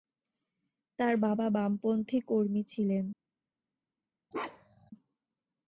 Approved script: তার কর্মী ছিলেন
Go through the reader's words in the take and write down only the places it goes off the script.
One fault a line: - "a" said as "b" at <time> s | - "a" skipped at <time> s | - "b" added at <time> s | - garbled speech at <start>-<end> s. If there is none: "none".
- "বাবা বামপন্থী" added at 1.2 s